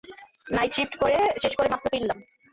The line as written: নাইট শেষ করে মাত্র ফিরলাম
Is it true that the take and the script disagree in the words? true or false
true